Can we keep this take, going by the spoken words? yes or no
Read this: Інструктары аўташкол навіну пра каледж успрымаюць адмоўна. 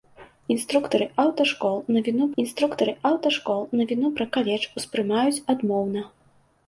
no